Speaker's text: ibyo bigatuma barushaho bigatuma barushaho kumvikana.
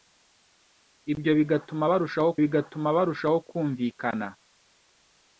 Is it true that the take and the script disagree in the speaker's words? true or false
false